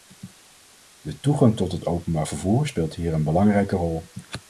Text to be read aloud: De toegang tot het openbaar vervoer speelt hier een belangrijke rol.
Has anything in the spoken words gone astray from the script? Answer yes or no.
no